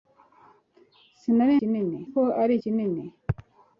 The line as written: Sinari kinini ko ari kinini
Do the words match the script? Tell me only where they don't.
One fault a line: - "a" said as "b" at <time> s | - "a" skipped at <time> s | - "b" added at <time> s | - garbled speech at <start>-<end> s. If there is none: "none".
none